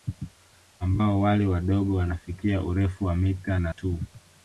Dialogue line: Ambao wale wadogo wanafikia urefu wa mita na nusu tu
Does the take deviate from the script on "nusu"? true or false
true